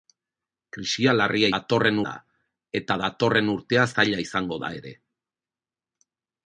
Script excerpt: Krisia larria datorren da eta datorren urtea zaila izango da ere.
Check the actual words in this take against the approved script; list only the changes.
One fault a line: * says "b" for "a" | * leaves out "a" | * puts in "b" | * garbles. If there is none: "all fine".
all fine